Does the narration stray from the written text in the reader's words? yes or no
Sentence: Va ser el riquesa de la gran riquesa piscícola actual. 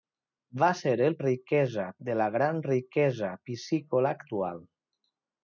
no